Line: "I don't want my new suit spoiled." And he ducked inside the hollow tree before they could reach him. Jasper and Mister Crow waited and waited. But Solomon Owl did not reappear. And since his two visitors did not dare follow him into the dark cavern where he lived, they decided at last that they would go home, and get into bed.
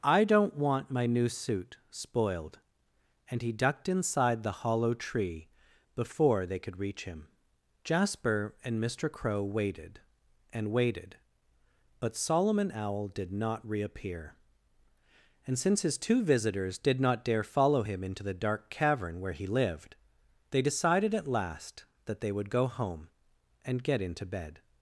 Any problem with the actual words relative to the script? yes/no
no